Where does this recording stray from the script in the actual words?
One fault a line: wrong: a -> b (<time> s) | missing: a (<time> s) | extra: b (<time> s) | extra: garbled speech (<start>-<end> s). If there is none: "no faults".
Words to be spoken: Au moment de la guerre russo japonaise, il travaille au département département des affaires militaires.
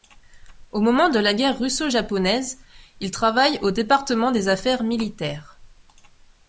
missing: département (4.3 s)